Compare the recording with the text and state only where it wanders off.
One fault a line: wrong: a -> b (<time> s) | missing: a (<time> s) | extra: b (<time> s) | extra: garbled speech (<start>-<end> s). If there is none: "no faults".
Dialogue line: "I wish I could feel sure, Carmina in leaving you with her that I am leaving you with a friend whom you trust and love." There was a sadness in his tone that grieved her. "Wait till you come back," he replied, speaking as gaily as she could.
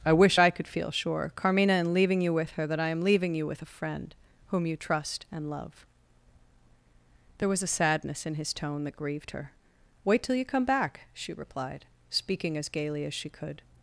wrong: he -> she (11.1 s)